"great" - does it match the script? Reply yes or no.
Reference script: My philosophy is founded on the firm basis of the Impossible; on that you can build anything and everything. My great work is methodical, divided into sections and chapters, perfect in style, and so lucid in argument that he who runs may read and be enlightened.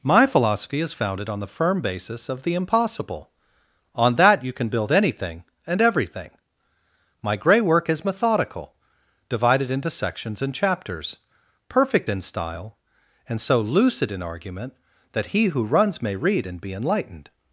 no